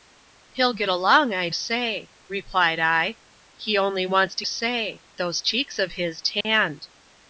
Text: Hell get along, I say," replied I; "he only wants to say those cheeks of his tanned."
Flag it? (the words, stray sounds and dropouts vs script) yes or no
yes